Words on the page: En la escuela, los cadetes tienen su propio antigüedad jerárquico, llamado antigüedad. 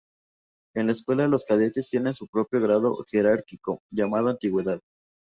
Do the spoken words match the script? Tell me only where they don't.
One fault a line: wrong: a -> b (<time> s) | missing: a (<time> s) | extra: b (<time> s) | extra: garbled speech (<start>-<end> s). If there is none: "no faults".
wrong: antigüedad -> grado (2.6 s)